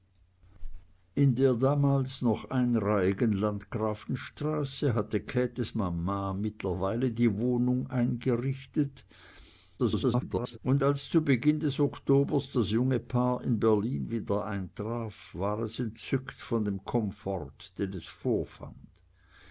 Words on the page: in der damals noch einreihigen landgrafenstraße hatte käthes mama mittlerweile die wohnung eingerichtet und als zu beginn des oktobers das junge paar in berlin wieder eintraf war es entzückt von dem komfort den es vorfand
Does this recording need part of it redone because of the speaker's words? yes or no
yes